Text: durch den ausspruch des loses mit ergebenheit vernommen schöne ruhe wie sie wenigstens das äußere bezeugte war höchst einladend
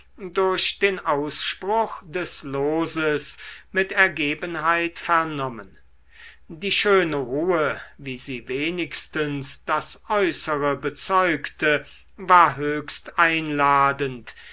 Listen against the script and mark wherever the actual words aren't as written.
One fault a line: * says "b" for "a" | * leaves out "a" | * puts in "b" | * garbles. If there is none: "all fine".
* puts in "die"